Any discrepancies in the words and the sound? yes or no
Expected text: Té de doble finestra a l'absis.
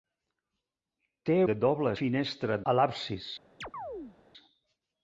yes